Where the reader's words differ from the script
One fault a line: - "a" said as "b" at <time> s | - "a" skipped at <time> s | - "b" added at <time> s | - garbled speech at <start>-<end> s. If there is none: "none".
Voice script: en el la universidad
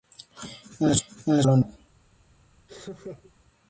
none